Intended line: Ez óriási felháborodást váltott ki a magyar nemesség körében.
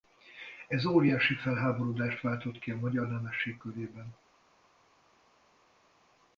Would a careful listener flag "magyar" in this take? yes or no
no